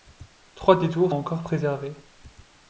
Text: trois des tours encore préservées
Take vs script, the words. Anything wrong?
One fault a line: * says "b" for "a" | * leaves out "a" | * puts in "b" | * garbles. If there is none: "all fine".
all fine